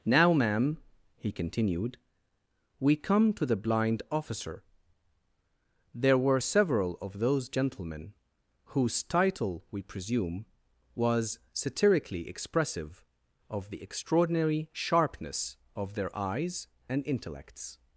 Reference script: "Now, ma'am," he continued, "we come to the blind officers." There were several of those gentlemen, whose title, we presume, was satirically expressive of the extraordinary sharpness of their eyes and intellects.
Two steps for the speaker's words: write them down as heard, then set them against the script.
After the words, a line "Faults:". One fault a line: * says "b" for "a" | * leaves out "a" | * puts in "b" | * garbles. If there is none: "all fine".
"Now, ma'am," he continued, "we come to the blind officer." There were several of those gentlemen, whose title, we presume, was satirically expressive of the extraordinary sharpness of their eyes and intellects.
Faults:
* says "officer" for "officers"